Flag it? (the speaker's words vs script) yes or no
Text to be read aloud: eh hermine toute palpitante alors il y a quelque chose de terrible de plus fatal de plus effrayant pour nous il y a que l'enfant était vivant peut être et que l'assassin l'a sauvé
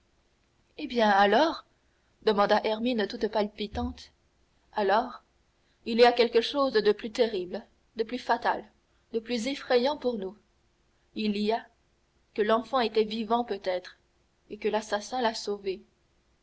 yes